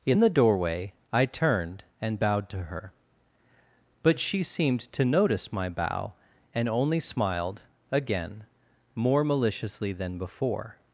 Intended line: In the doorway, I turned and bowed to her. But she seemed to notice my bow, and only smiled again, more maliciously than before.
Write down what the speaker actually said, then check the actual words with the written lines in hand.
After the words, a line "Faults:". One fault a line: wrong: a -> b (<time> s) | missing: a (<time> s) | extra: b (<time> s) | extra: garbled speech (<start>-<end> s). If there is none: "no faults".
In the doorway, I turned and bowed to her. But she seemed to notice my bow, and only smiled again, more maliciously than before.
Faults:
no faults